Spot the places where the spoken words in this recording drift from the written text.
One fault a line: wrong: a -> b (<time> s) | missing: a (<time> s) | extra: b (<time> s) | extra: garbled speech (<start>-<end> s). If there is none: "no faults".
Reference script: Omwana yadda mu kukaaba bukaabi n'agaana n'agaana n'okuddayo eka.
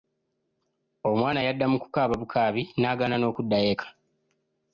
missing: n'agaana (3.1 s)